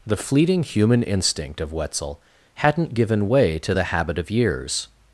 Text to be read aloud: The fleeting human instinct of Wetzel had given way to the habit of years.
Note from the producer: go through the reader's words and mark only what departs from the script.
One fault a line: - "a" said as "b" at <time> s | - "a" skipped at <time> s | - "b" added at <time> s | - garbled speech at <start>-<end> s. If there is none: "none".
- "had" said as "hadn't" at 2.5 s